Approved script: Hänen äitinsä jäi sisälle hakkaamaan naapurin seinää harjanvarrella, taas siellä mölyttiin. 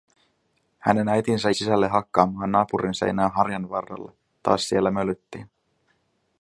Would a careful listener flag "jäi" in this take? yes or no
yes